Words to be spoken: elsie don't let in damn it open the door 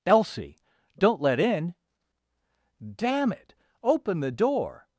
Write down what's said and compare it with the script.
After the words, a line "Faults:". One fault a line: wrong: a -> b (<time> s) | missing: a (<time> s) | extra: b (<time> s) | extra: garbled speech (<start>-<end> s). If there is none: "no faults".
elsie don't let in damn it open the door
Faults:
no faults